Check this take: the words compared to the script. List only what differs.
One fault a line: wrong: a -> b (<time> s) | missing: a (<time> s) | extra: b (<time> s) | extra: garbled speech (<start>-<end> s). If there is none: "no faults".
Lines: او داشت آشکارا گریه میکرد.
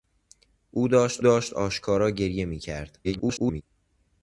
extra: داشت (1.2 s)
extra: garbled speech (3.0-3.6 s)